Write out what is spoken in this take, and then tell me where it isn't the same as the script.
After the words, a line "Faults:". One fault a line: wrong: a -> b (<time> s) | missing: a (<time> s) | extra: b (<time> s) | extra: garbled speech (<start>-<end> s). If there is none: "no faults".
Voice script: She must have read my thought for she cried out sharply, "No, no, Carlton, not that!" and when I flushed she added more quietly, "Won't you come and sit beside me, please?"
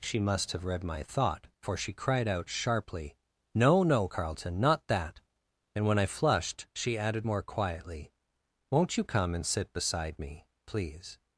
She must have read my thought for she cried out sharply, "No, no, Carlton, not that!" and when I flushed she added more quietly, "Won't you come and sit beside me, please?"
Faults:
no faults